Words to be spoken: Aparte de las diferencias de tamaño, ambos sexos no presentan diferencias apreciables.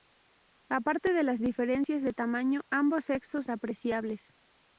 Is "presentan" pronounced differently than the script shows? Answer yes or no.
yes